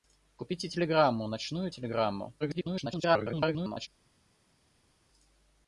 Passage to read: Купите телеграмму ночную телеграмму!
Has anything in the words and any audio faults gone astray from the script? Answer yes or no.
yes